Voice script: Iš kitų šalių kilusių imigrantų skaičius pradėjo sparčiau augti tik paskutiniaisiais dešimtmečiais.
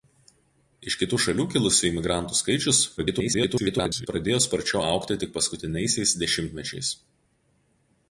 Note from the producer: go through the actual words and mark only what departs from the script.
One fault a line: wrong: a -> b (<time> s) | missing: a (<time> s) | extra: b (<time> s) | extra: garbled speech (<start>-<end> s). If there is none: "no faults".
extra: garbled speech (3.0-4.1 s)